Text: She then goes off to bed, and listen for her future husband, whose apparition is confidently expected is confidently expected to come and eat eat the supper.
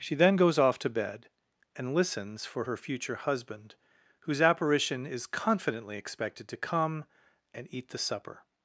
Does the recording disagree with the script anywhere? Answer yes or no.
yes